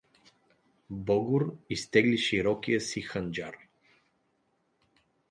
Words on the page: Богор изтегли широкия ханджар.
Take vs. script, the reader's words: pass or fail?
fail